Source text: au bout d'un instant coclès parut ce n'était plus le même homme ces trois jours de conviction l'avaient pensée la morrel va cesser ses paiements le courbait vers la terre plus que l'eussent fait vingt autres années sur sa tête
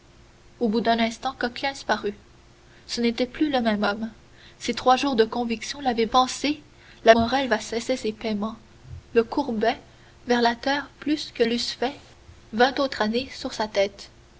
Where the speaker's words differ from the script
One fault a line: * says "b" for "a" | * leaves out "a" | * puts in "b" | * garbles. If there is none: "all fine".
all fine